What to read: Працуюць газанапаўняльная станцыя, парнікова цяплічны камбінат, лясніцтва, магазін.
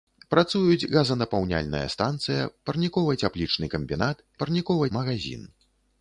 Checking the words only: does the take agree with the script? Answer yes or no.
no